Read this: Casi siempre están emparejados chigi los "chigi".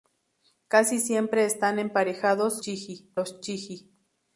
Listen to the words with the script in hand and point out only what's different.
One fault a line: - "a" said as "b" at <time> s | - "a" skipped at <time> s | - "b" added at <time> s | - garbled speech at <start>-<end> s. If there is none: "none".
none